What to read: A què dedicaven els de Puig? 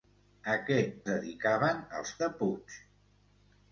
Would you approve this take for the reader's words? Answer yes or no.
yes